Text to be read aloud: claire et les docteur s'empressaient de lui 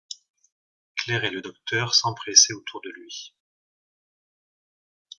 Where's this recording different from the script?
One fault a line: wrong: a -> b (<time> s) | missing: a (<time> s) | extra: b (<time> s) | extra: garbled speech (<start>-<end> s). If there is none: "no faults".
wrong: les -> le (1.3 s)
extra: autour (2.5 s)